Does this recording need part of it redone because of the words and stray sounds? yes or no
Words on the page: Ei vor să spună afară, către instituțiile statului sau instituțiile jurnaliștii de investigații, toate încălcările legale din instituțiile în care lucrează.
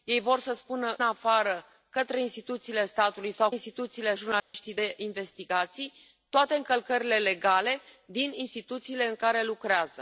yes